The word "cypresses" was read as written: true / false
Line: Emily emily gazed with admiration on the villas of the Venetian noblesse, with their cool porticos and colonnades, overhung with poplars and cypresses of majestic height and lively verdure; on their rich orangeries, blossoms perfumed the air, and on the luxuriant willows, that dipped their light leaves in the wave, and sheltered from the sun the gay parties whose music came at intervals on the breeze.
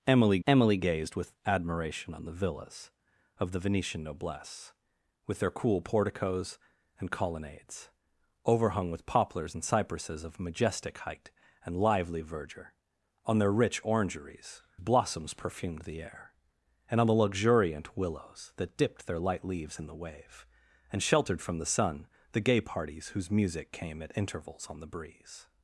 true